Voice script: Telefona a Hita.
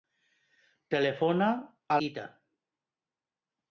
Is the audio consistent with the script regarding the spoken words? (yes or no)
yes